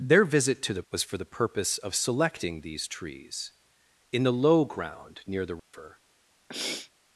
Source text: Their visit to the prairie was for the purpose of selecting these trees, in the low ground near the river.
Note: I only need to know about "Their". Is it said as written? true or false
true